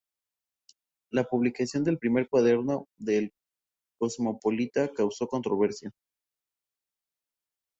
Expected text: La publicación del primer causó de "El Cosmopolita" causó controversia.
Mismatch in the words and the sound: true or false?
true